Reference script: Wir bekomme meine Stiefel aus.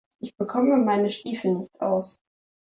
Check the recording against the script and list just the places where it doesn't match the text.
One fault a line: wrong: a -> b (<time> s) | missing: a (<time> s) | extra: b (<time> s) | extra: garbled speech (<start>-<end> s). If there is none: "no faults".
wrong: Wir -> Ich (0.2 s)
extra: nicht (1.5 s)